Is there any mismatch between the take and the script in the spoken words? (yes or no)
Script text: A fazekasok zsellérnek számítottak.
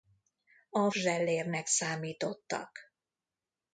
yes